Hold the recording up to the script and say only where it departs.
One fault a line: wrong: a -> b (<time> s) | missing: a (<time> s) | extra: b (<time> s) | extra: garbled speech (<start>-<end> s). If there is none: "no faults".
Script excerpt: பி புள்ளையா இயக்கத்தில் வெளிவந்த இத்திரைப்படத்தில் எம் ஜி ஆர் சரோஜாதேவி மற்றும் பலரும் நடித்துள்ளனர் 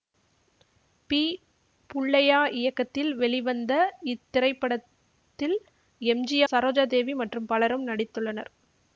missing: ஆர் (6.4 s)